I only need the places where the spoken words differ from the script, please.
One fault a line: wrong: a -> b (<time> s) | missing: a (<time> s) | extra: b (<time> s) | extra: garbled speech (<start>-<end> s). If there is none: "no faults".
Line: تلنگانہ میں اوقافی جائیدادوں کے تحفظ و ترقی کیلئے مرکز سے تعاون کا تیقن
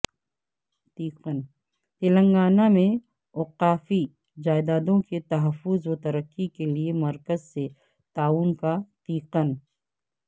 no faults